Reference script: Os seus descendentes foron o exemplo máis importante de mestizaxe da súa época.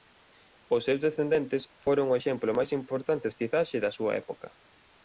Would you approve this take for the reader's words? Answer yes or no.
no